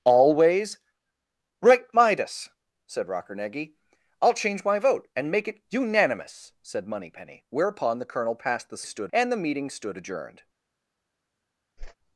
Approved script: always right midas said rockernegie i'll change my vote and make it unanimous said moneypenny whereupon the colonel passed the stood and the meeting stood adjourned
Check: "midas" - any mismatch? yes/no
no